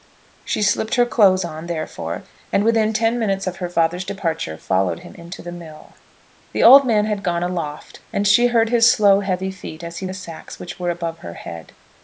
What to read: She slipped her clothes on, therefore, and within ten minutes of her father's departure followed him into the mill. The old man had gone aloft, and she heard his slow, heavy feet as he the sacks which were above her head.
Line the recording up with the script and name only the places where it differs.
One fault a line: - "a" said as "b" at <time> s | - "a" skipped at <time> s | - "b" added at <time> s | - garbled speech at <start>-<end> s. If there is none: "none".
none